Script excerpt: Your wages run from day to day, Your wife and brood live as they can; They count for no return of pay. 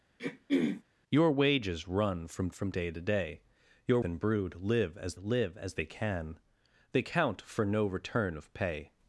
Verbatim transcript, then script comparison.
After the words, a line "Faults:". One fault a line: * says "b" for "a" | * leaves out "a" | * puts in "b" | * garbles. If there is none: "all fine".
Your wages run from from day to day, Your and brood live as live as they can; They count for no return of pay.
Faults:
* puts in "from"
* leaves out "wife"
* puts in "live as"